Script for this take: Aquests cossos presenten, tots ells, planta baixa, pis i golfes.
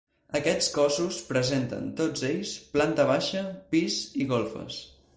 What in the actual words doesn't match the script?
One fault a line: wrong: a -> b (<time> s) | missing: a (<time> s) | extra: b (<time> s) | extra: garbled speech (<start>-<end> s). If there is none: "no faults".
no faults